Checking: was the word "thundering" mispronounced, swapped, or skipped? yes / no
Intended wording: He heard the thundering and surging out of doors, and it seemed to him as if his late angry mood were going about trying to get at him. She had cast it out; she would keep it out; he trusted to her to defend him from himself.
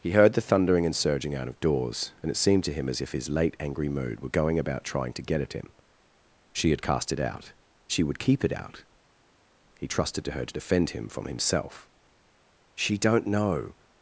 no